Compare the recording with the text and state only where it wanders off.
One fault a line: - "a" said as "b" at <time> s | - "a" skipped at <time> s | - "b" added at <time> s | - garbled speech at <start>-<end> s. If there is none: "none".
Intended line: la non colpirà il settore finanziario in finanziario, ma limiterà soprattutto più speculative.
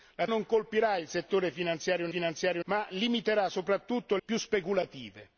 none